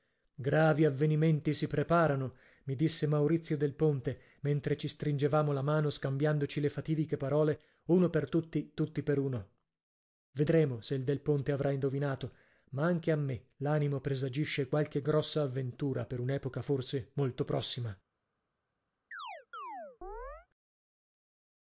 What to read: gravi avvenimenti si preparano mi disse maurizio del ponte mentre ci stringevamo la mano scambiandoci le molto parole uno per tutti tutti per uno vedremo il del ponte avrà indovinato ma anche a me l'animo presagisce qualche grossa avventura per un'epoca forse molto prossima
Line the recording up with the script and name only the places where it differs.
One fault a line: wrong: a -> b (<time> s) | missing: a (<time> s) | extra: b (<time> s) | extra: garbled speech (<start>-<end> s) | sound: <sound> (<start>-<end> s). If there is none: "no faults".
wrong: molto -> fatidiche (6.7 s)
extra: se (10.8 s)
sound: chirp (19.1-20.5 s)